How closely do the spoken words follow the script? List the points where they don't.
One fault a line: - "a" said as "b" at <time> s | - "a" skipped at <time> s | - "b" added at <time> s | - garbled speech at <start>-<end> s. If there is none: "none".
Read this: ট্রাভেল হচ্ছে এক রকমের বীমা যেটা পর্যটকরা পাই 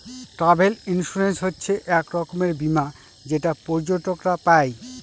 - "ইন্সুরেন্স" added at 0.9 s